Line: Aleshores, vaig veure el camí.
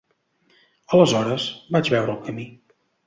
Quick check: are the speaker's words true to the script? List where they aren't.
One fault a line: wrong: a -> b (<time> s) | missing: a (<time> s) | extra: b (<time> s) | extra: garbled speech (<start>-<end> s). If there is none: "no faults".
no faults